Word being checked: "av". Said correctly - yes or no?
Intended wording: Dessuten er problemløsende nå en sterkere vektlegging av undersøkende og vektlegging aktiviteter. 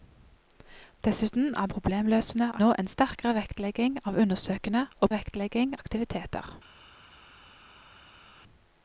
yes